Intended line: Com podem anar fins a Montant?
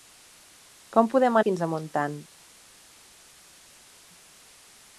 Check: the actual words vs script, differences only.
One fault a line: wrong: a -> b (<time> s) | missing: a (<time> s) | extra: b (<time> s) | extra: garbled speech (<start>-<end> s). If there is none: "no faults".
missing: anar (1.4 s)